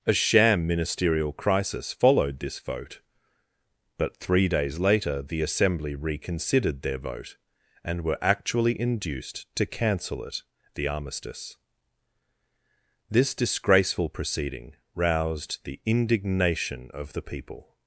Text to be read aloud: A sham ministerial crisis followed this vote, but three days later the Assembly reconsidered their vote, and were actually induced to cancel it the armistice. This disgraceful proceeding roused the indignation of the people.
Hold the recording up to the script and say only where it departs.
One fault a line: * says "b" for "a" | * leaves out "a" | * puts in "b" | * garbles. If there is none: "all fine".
all fine